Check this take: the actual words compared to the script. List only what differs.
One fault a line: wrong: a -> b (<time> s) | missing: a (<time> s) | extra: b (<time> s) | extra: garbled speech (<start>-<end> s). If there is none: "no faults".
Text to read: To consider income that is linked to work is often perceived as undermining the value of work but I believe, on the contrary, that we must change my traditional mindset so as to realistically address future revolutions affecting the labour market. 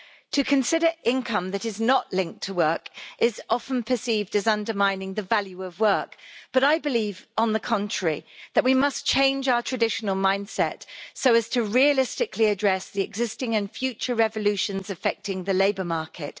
extra: not (1.8 s)
wrong: my -> our (9.5 s)
extra: the existing and (12.9 s)